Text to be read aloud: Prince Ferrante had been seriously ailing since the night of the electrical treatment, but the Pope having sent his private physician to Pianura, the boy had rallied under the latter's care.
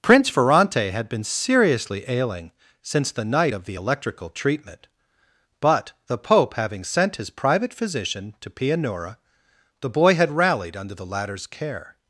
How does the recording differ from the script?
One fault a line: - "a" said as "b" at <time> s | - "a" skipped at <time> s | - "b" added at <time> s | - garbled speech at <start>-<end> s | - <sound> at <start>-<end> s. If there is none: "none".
none